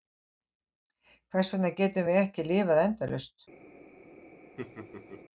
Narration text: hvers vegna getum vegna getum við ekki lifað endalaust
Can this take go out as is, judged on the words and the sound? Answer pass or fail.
fail